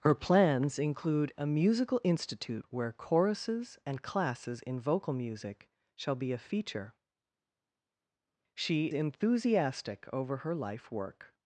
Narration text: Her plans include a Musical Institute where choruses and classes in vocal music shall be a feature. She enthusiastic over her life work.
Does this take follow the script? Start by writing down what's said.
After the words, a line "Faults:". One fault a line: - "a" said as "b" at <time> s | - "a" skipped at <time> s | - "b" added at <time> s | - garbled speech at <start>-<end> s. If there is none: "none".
Her plans include a Musical Institute where choruses and classes in vocal music shall be a feature. She enthusiastic over her life work.
Faults:
none